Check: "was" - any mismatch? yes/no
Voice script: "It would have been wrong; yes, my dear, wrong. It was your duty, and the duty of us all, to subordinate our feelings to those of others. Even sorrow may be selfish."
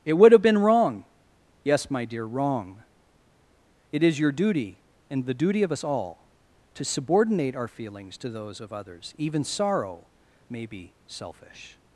yes